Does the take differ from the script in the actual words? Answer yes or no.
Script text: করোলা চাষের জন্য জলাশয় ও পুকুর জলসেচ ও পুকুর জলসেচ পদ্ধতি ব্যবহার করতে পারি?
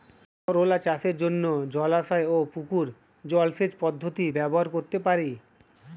yes